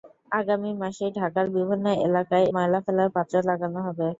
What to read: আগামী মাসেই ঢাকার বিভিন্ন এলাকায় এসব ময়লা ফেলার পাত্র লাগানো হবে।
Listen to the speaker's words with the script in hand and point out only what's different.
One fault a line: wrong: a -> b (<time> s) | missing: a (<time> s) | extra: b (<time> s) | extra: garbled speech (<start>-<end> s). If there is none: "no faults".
missing: এসব (2.5 s)